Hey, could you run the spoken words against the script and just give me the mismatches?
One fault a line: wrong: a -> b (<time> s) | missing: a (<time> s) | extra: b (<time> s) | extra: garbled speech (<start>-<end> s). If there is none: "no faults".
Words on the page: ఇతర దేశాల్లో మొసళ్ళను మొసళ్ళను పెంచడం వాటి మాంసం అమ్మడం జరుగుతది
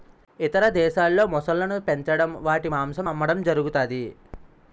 missing: మొసళ్ళను (1.8 s)